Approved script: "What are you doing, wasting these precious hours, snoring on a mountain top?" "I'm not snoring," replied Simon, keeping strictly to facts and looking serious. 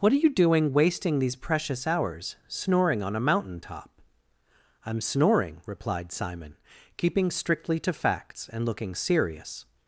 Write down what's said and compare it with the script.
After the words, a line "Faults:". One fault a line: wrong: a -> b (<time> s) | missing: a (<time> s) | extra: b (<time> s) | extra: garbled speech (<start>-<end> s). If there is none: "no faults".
"What are you doing, wasting these precious hours, snoring on a mountain top?" "I'm snoring," replied Simon, keeping strictly to facts and looking serious.
Faults:
missing: not (5.0 s)